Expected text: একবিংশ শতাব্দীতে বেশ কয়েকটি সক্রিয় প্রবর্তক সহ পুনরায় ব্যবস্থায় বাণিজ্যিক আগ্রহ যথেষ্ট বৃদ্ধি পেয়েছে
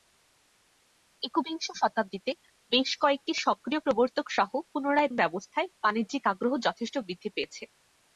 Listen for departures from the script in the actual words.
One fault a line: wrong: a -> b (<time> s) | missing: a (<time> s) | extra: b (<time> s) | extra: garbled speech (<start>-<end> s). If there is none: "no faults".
no faults